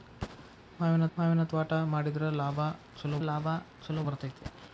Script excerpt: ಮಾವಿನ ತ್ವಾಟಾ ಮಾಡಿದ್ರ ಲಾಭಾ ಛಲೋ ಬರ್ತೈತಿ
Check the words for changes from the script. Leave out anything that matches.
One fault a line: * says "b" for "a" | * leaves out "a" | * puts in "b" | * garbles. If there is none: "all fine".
* puts in "ಮಾವಿನ"
* puts in "ಲಾಭಾ ಛಲೋ"